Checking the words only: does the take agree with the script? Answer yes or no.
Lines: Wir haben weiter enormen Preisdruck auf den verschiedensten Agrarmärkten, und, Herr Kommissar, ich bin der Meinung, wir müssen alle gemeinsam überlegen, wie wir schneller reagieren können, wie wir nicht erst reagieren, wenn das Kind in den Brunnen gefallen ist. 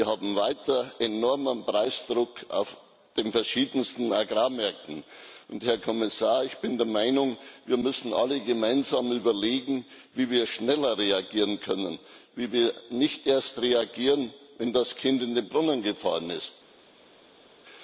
yes